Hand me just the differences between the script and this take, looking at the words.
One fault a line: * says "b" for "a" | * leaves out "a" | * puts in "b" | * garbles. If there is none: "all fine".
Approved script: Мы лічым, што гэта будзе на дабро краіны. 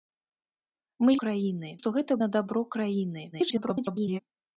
* says "краіны" for "лічым"
* leaves out "будзе"
* garbles